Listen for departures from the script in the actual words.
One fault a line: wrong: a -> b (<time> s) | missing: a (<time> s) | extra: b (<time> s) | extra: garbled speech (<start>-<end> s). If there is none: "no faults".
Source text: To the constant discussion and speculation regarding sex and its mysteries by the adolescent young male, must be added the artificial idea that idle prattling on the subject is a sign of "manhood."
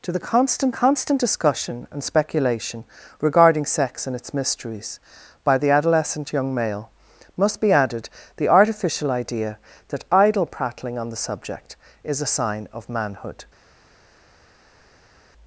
extra: constant (0.7 s)